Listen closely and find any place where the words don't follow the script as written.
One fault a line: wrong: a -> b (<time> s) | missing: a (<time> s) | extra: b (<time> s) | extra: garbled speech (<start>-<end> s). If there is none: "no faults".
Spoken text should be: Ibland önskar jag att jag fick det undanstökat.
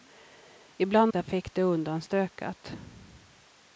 missing: önskar jag (1.1 s)